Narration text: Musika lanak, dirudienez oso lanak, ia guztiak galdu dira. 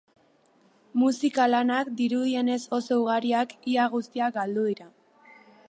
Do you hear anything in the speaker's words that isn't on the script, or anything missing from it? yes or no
yes